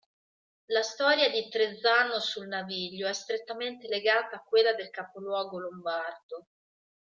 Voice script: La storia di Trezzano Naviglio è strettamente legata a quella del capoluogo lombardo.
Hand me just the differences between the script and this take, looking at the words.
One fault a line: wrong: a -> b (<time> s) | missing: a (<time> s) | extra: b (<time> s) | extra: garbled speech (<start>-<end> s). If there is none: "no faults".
extra: sul (2.2 s)